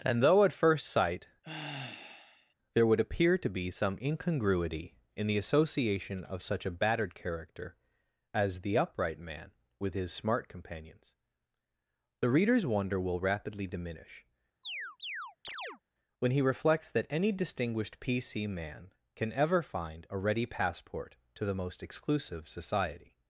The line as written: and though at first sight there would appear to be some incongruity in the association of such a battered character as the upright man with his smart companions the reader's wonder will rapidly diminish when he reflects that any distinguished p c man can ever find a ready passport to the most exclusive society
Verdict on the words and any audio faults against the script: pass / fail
fail